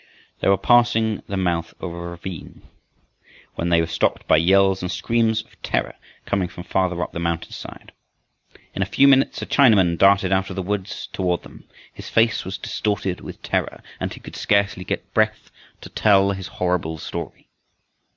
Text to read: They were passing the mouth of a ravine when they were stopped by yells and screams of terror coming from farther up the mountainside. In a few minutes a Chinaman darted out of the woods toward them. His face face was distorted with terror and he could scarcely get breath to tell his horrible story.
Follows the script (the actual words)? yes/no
no